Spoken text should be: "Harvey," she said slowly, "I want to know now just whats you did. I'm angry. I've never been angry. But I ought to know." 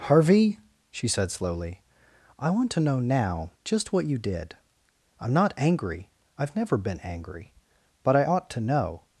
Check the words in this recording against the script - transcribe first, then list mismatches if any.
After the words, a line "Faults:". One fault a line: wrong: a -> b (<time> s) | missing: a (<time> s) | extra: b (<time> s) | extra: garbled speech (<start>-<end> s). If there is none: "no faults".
"Harvey," she said slowly, "I want to know now just what you did. I'm not angry. I've never been angry. But I ought to know."
Faults:
wrong: whats -> what (3.9 s)
extra: not (5.3 s)